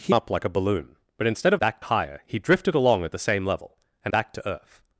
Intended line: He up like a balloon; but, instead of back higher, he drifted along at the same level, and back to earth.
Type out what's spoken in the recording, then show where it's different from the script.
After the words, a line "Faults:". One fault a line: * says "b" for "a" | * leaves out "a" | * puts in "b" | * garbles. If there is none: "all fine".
He up like a balloon; but, instead of back higher, he drifted along at the same level, and back to earth.
Faults:
all fine